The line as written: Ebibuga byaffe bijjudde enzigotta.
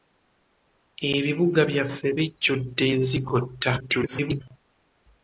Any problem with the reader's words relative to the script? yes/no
yes